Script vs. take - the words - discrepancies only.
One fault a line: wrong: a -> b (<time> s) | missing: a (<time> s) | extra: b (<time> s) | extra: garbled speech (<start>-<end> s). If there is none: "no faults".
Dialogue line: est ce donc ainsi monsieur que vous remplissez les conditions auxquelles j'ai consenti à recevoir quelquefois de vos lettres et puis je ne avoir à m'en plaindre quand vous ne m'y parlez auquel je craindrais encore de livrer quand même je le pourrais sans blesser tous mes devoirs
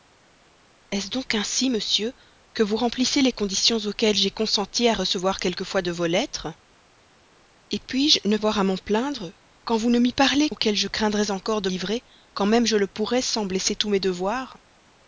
no faults